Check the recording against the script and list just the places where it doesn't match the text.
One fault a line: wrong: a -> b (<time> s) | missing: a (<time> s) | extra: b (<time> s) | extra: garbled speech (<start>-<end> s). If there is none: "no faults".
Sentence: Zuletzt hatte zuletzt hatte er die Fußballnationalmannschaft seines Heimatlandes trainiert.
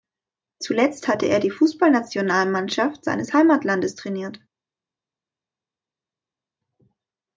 missing: zuletzt hatte (1.3 s)